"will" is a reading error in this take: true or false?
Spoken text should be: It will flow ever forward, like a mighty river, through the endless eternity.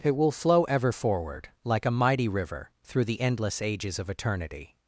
false